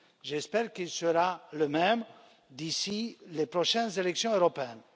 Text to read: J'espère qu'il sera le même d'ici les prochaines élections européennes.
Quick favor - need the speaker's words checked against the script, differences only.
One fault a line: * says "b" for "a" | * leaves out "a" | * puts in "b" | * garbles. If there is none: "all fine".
all fine